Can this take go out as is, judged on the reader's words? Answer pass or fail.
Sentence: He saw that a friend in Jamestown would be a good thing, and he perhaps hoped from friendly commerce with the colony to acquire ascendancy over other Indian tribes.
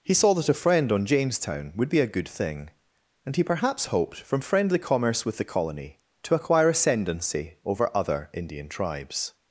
fail